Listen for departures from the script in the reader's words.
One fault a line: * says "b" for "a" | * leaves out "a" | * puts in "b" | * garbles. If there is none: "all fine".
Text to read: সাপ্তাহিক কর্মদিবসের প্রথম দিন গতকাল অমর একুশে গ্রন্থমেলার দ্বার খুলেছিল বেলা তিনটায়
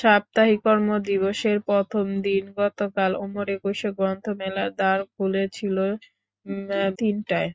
* leaves out "বেলা"